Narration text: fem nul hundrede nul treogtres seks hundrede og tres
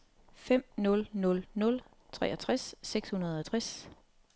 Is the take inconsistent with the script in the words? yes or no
yes